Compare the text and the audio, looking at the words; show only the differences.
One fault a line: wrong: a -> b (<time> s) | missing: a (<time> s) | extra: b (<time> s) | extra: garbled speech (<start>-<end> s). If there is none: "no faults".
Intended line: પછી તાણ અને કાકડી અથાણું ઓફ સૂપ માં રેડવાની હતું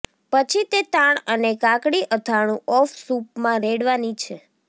extra: તે (0.7 s)
wrong: હતું -> છે (4.2 s)